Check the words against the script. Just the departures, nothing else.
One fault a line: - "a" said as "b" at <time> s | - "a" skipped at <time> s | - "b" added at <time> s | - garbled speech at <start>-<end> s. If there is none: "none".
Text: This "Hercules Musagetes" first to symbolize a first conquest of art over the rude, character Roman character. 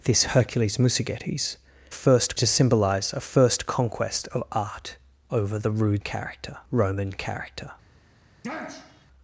none